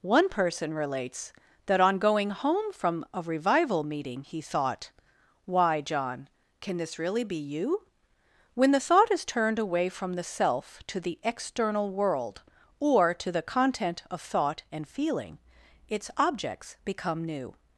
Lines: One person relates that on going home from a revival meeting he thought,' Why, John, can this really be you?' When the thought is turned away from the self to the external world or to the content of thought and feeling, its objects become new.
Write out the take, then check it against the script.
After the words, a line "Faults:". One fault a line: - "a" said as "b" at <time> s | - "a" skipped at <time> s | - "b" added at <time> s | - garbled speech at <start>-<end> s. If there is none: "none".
One person relates that on going home from a revival meeting he thought,' Why, John, can this really be you?' When the thought is turned away from the self to the external world or to the content of thought and feeling, its objects become new.
Faults:
none